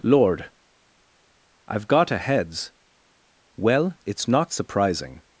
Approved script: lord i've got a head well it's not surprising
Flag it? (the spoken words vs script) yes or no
yes